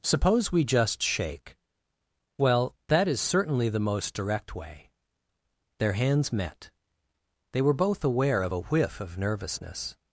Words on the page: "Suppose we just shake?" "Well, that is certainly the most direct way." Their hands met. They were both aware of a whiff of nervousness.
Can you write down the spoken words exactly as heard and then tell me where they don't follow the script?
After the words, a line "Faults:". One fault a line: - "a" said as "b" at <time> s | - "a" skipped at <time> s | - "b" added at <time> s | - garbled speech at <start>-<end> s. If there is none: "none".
"Suppose we just shake?" "Well, that is certainly the most direct way." Their hands met. They were both aware of a whiff of nervousness.
Faults:
none